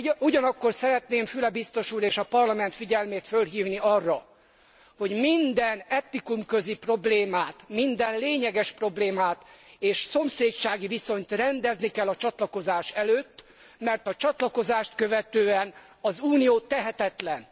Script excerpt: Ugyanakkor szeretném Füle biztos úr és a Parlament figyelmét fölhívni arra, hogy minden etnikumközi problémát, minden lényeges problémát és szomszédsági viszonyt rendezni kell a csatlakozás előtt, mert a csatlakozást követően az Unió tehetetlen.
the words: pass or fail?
pass